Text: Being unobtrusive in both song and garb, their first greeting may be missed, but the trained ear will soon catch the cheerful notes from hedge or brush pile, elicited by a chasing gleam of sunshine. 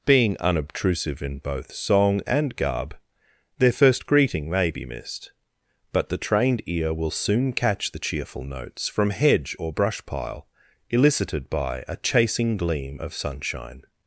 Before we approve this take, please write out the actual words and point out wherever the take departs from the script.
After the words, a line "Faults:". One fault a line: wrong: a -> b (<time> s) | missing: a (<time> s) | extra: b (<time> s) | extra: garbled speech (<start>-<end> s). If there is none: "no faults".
Being unobtrusive in both song and garb, their first greeting may be missed, but the trained ear will soon catch the cheerful notes from hedge or brush pile, elicited by a chasing gleam of sunshine.
Faults:
no faults